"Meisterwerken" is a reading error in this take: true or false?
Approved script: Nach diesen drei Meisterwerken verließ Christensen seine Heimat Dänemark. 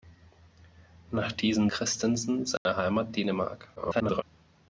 true